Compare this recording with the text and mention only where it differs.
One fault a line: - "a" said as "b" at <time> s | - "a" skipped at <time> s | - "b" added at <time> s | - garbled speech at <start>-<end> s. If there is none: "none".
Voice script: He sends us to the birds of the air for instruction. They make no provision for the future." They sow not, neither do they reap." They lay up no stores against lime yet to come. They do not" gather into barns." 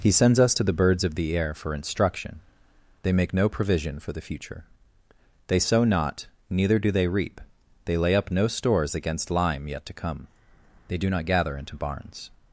none